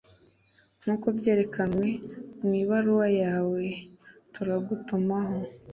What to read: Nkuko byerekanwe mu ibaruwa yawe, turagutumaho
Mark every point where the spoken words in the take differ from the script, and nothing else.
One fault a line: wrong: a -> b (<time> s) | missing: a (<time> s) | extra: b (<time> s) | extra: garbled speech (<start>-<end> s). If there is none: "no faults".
no faults